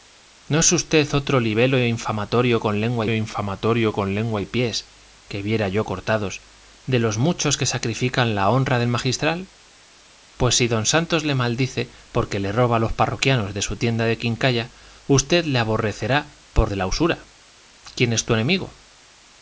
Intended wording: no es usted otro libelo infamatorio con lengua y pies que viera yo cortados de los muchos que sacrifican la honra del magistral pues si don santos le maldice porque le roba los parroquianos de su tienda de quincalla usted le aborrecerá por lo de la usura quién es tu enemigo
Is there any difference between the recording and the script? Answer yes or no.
yes